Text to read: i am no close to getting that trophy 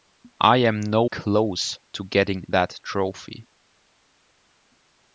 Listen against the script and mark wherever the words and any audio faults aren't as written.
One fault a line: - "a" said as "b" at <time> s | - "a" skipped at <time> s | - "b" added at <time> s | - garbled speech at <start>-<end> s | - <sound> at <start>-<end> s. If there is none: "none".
none